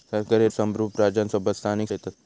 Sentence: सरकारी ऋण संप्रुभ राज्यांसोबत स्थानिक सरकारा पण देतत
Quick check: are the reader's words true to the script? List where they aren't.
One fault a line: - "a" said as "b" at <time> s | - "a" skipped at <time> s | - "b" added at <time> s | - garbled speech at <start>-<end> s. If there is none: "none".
- "ऋण" skipped at 0.5 s
- "सरकारा पण" skipped at 1.9 s